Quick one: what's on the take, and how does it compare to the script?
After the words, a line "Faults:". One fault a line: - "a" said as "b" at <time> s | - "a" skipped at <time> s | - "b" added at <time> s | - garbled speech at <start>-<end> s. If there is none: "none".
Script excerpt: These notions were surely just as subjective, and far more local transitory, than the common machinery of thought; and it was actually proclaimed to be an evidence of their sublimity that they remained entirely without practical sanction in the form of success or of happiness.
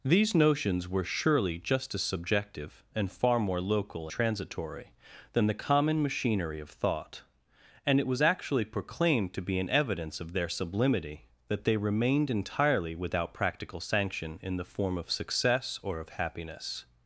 These notions were surely just as subjective, and far more local transitory, than the common machinery of thought; and it was actually proclaimed to be an evidence of their sublimity that they remained entirely without practical sanction in the form of success or of happiness.
Faults:
none